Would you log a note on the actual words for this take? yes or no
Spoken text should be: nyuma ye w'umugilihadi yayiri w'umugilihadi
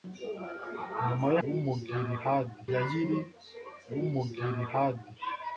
no